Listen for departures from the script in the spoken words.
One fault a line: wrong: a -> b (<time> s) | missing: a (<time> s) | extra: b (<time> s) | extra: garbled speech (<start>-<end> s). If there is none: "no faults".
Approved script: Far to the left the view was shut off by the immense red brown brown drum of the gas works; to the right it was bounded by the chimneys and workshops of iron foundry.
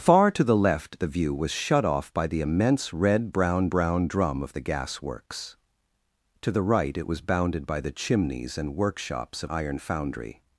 no faults